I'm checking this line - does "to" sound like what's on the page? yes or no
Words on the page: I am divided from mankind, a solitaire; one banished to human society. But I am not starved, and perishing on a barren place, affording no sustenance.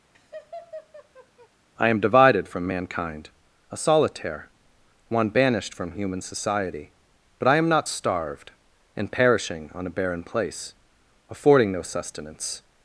no